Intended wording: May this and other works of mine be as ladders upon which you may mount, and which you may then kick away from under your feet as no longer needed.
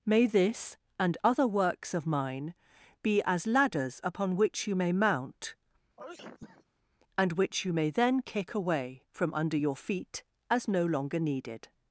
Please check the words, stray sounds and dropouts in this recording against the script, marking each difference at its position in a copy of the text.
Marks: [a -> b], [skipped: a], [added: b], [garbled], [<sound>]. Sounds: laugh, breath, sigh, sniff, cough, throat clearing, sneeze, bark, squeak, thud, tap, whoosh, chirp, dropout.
May this and other works of mine be as ladders upon which you may mount, [sneeze] and which you may then kick away from under your feet as no longer needed.